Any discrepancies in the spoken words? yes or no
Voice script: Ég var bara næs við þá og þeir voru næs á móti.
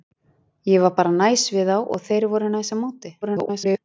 yes